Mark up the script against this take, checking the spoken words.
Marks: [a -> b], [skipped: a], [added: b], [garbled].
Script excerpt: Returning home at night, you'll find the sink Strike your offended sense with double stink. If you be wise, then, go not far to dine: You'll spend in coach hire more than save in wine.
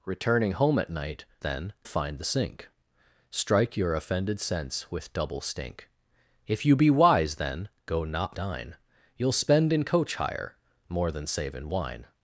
Returning home at night, [you'll -> then] find the sink Strike your offended sense with double stink. If you be wise, then, go not [skipped: far to] dine: You'll spend in coach hire more than save in wine.